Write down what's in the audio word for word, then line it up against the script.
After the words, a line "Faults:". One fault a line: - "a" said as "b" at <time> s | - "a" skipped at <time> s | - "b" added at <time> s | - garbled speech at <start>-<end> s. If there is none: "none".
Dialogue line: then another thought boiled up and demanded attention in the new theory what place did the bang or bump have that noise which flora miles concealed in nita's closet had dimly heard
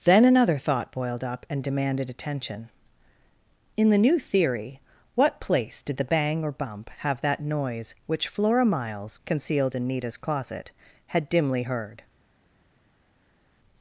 then another thought boiled up and demanded attention in the new theory what place did the bang or bump have that noise which flora miles concealed in nita's closet had dimly heard
Faults:
none